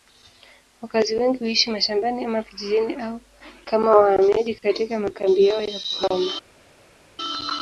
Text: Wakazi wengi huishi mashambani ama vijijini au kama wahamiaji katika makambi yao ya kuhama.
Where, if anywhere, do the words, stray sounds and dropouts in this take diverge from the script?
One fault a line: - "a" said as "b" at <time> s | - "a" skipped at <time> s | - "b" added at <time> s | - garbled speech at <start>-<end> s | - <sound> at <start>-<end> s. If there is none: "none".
none